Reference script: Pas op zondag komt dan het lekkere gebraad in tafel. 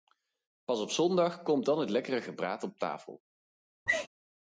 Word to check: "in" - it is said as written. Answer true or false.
false